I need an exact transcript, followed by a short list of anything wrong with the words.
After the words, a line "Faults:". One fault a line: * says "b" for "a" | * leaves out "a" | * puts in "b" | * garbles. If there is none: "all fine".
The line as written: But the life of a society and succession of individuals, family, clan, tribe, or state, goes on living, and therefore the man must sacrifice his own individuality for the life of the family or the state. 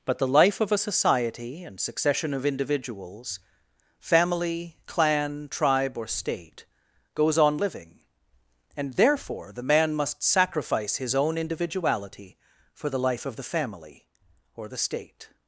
But the life of a society and succession of individuals, family, clan, tribe, or state, goes on living, and therefore the man must sacrifice his own individuality for the life of the family or the state.
Faults:
all fine